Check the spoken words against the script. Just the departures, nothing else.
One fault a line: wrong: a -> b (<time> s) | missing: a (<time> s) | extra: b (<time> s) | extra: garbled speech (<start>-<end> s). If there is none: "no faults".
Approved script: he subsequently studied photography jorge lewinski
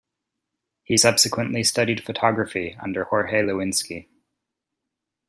extra: under (2.8 s)